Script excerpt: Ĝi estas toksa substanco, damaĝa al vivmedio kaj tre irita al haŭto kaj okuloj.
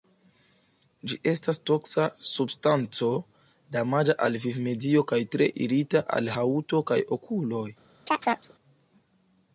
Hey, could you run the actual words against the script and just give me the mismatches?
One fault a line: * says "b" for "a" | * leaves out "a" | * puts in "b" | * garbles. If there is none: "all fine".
all fine